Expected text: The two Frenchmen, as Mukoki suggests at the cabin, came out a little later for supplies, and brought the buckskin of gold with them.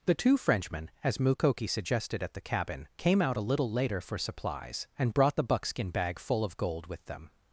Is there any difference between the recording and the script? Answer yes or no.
yes